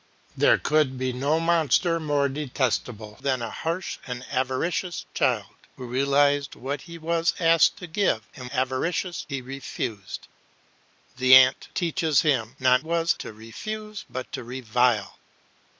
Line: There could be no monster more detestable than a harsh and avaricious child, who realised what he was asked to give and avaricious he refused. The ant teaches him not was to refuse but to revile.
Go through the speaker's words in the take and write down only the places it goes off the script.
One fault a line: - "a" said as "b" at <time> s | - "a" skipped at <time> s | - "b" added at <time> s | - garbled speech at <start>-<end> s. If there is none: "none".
none